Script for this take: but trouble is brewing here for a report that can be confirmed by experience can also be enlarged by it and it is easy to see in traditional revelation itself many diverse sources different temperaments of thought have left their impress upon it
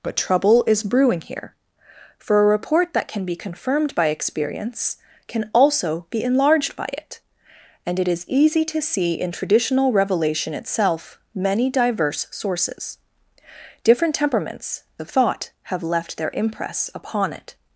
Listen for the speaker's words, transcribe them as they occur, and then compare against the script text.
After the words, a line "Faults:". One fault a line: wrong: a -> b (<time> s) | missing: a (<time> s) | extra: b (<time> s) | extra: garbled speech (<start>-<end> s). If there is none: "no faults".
but trouble is brewing here for a report that can be confirmed by experience can also be enlarged by it and it is easy to see in traditional revelation itself many diverse sources different temperaments of thought have left their impress upon it
Faults:
no faults